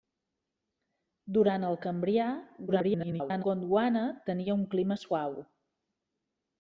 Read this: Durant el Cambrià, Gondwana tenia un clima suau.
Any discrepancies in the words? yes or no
yes